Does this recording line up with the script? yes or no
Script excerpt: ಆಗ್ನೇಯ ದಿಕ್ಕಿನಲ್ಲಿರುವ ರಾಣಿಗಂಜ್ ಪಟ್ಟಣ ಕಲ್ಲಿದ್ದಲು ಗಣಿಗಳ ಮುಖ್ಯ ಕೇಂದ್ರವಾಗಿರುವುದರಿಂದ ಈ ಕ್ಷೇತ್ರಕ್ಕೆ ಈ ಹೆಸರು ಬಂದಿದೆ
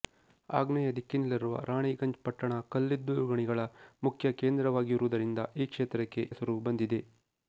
no